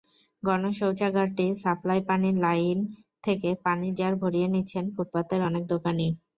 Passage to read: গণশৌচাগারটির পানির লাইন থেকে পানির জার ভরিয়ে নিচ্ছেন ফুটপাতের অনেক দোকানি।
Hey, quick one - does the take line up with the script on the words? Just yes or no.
no